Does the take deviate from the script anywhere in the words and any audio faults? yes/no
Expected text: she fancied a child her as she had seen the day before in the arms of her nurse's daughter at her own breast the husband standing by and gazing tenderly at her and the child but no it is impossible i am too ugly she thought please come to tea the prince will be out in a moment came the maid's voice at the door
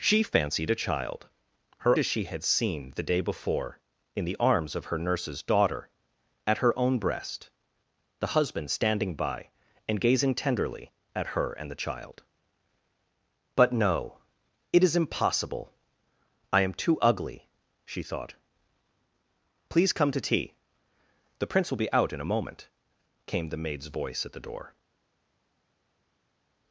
no